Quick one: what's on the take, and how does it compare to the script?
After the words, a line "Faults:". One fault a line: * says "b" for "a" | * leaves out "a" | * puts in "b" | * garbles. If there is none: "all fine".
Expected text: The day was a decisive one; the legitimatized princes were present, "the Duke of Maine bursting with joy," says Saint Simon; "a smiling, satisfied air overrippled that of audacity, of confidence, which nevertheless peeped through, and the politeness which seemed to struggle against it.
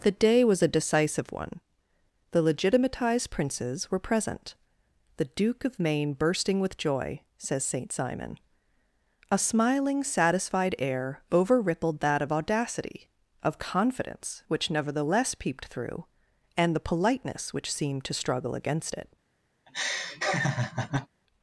The day was a decisive one; the legitimatized princes were present, "the Duke of Maine bursting with joy," says Saint Simon; "a smiling, satisfied air overrippled that of audacity, of confidence, which nevertheless peeped through, and the politeness which seemed to struggle against it.
Faults:
all fine